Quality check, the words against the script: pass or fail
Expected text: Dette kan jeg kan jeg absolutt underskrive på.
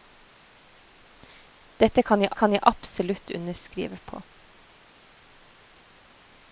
pass